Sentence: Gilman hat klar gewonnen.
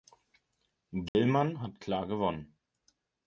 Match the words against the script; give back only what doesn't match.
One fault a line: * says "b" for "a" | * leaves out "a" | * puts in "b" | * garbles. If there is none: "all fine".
all fine